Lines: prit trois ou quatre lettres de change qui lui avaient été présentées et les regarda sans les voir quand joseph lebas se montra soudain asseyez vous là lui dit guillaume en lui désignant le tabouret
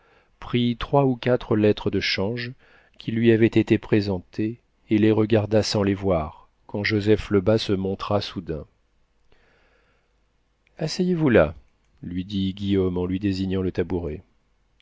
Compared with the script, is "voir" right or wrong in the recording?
right